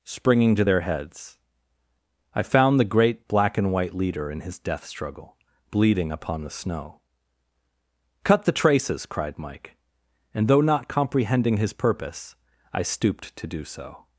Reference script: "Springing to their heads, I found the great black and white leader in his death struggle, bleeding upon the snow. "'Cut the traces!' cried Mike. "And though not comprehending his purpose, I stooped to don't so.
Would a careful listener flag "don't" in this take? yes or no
yes